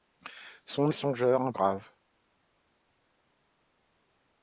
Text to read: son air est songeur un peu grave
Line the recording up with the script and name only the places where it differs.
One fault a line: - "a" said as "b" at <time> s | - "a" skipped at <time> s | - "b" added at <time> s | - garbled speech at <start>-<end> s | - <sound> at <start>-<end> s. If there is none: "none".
- "air" skipped at 0.9 s
- "peu" skipped at 1.5 s